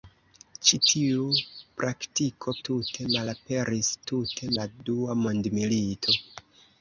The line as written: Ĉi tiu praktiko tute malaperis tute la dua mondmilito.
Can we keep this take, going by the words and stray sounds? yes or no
yes